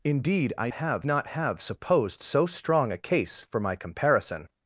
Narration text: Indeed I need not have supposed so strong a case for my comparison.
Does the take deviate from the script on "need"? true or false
true